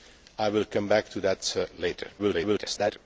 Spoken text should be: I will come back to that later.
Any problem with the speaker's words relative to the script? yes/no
yes